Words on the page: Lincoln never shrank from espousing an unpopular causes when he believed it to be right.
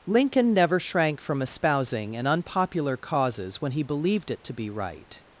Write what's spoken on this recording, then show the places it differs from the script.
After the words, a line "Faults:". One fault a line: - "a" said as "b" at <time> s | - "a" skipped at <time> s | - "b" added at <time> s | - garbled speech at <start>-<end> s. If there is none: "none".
Lincoln never shrank from espousing an unpopular causes when he believed it to be right.
Faults:
none